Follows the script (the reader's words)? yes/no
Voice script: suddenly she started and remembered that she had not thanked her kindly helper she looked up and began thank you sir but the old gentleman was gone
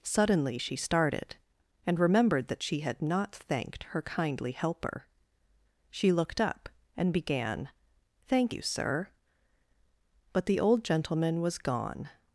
yes